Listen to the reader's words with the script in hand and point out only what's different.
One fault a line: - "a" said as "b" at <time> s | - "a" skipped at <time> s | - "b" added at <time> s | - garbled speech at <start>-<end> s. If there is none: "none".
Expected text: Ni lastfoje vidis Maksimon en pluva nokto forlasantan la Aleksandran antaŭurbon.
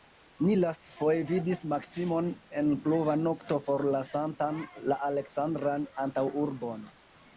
none